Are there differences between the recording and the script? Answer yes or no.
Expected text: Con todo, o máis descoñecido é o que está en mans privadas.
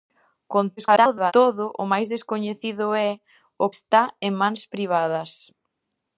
yes